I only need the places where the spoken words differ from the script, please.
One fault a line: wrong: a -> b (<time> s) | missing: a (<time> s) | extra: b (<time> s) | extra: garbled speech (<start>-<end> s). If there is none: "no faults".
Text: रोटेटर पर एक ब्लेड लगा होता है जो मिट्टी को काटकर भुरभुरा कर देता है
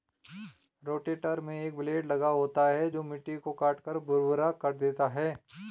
wrong: पर -> में (1.4 s)